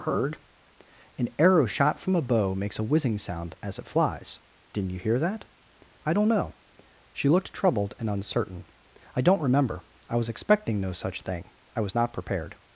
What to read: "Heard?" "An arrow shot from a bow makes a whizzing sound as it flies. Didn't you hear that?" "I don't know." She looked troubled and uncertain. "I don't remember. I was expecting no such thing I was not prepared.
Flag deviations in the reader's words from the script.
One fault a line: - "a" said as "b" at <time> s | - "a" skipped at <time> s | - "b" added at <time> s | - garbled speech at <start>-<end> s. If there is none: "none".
none